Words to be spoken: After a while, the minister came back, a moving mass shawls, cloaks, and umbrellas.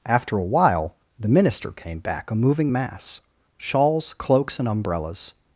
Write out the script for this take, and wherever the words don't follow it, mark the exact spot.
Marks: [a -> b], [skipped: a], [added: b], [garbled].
After a while, the minister came back, a moving mass shawls, cloaks, and umbrellas.